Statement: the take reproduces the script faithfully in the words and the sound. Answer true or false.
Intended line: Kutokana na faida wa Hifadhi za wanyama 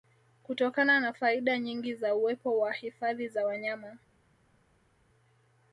false